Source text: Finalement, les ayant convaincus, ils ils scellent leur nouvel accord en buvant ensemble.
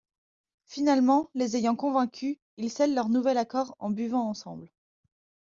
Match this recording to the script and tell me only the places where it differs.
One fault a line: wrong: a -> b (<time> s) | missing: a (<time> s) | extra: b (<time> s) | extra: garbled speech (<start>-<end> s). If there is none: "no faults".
missing: ils (2.7 s)